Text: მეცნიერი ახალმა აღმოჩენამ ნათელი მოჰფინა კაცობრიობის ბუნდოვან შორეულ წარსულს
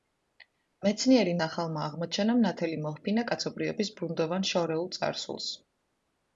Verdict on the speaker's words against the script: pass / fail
pass